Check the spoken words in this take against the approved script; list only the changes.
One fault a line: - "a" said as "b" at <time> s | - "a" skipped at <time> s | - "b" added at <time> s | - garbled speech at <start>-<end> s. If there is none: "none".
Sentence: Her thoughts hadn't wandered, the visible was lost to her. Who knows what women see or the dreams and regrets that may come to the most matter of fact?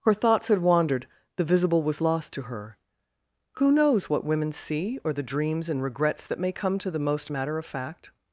- "hadn't" said as "had" at 0.5 s